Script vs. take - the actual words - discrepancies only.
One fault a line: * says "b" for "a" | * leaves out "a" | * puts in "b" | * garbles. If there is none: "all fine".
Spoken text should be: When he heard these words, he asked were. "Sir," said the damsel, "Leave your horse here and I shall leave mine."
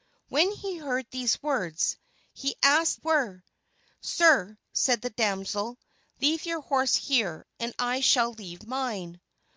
all fine